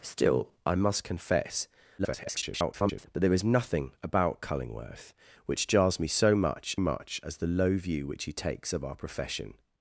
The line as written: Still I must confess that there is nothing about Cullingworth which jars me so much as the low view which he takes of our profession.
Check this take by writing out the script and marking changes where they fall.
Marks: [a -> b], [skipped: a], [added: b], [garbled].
Still I must confess [garbled] that there is nothing about Cullingworth which jars me so much [added: much] as the low view which he takes of our profession.